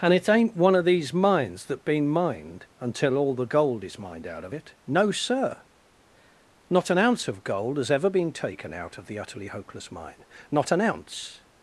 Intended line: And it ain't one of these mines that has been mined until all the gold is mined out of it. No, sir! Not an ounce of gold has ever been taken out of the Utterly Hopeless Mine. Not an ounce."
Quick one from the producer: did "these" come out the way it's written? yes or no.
yes